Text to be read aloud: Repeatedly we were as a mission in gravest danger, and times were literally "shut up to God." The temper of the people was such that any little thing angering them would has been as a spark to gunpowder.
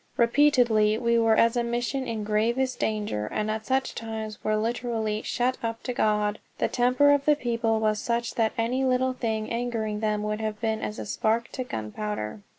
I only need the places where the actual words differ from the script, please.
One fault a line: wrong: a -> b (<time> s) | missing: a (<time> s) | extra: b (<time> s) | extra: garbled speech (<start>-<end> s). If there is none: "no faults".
extra: at such (3.5 s)
wrong: has -> have (10.4 s)